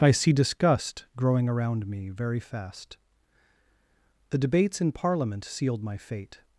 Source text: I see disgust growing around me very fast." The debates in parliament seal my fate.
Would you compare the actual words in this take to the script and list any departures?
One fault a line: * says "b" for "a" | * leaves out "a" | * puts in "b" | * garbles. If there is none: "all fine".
* says "sealed" for "seal"